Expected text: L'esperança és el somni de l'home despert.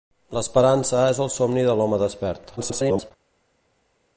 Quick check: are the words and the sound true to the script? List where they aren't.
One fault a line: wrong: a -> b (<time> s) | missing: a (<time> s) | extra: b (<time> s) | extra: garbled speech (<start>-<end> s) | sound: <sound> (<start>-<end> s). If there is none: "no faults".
extra: garbled speech (2.6-3.1 s)